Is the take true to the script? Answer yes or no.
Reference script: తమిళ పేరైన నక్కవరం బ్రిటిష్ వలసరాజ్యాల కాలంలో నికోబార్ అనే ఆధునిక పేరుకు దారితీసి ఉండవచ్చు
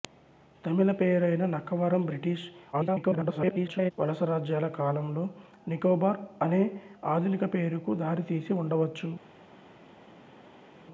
no